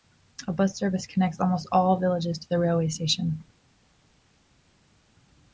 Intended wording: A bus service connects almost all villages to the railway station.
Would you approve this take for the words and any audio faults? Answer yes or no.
yes